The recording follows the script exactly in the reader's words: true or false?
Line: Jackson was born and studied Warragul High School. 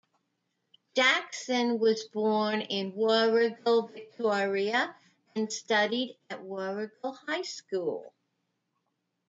false